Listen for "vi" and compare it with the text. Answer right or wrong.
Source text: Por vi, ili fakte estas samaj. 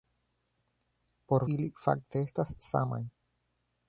wrong